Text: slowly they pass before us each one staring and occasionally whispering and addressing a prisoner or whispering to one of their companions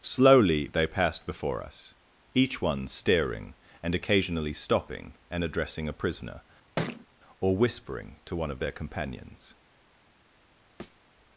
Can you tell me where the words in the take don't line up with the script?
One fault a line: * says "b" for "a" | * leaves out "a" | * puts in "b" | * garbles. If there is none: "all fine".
* says "passed" for "pass"
* says "stopping" for "whispering"